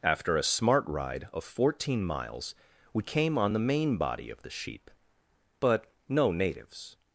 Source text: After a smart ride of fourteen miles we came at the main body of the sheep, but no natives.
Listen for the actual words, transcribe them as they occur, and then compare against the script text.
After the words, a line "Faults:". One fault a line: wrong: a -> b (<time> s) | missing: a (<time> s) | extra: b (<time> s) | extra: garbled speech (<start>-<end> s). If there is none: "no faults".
After a smart ride of fourteen miles we came on the main body of the sheep, but no natives.
Faults:
wrong: at -> on (3.4 s)